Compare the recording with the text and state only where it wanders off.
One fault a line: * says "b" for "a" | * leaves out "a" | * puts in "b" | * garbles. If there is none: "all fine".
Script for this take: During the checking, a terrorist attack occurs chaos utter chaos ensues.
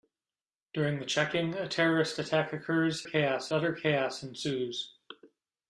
all fine